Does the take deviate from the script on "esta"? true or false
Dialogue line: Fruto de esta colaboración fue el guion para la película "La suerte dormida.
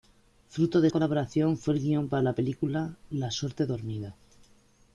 true